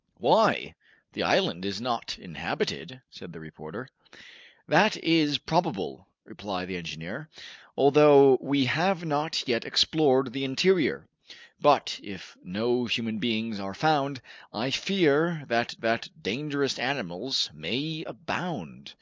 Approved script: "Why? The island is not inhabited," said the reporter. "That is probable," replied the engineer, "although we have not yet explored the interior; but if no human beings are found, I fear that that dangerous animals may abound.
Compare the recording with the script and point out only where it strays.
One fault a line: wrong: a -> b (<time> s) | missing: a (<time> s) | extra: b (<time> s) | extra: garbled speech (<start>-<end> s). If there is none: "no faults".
no faults